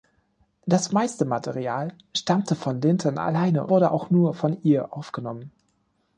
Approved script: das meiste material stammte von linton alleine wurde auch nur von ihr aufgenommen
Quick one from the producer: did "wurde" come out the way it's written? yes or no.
yes